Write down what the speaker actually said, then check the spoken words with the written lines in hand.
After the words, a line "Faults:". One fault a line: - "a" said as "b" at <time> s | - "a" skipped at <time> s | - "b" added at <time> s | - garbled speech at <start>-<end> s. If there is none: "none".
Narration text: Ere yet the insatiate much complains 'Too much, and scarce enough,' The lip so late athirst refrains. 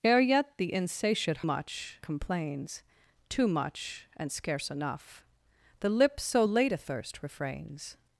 Ere yet the insatiate much complains 'Too much, and scarce enough,' The lip so late athirst refrains.
Faults:
none